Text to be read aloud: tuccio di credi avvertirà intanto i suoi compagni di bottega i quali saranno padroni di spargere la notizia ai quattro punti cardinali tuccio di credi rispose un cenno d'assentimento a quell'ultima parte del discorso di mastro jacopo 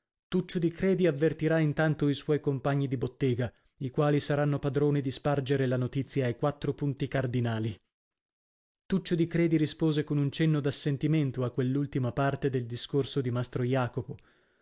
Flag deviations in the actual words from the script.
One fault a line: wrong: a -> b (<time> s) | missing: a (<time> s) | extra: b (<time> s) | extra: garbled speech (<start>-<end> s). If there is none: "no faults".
extra: con (10.0 s)